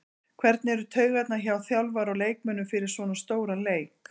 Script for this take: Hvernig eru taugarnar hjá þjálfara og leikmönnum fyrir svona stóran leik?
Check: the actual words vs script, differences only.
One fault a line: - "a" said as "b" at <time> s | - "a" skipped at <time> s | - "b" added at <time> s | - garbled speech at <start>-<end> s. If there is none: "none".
none